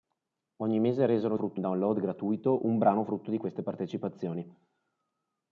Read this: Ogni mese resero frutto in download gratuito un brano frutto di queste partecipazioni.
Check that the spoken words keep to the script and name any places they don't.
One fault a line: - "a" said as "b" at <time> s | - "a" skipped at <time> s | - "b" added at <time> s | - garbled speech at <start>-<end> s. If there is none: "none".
none